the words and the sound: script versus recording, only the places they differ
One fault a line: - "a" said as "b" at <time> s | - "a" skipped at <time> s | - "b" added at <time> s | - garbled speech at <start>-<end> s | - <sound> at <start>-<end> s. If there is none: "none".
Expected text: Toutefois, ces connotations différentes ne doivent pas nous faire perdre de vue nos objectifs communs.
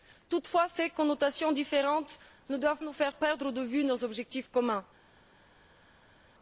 - "pas" skipped at 2.8 s